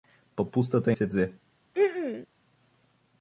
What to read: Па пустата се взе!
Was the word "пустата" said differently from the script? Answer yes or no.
no